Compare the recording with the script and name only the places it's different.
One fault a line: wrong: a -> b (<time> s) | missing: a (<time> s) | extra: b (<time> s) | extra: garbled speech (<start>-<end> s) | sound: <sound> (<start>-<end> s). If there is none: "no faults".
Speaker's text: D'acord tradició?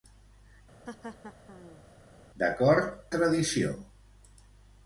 sound: laugh (0.9-1.8 s)